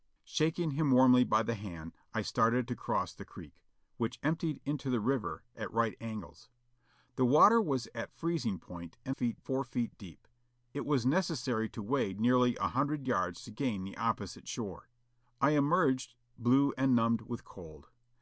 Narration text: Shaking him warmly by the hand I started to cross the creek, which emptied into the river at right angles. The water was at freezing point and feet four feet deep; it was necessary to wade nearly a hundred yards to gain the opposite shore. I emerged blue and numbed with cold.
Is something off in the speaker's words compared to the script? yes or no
no